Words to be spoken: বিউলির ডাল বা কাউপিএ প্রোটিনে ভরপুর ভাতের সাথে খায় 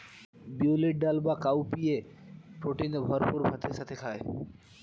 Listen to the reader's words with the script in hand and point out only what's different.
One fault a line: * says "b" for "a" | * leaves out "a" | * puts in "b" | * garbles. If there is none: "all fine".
all fine